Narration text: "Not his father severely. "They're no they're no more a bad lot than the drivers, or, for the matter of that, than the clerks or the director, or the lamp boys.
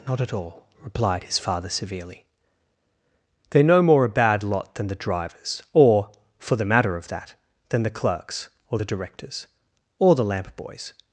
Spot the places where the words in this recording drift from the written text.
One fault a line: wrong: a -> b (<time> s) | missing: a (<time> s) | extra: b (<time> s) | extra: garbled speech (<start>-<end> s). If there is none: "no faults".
extra: at all replied (0.2 s)
missing: they're no (3.8 s)
wrong: director -> directors (8.8 s)